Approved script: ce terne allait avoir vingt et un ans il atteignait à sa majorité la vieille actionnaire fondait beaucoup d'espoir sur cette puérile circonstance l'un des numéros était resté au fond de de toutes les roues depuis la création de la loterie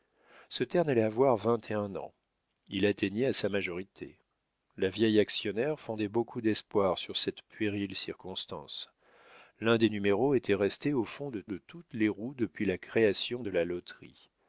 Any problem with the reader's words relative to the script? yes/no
no